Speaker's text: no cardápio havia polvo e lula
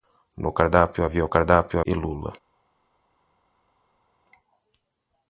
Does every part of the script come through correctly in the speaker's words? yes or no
no